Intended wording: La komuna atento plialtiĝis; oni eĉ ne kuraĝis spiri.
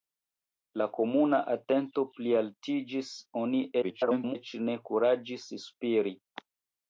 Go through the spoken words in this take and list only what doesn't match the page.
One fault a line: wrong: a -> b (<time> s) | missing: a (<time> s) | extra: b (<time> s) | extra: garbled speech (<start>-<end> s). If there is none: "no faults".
extra: garbled speech (3.8-4.4 s)